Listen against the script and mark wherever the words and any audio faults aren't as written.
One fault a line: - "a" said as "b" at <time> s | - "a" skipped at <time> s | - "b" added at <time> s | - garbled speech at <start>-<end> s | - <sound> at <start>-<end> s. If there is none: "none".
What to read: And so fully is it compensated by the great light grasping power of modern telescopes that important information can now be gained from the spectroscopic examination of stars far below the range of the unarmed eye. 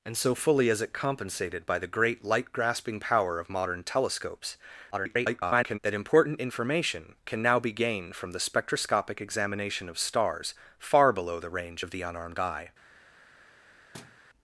- garbled speech at 4.9-5.8 s
- thud at 13.9-14.2 s